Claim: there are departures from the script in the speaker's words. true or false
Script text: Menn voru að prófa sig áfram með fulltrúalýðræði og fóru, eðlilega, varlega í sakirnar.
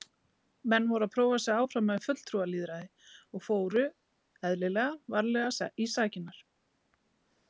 false